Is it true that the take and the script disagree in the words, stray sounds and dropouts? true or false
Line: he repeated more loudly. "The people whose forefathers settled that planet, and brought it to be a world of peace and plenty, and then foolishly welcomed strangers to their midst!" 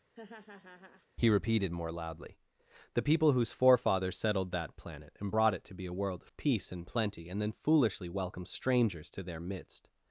true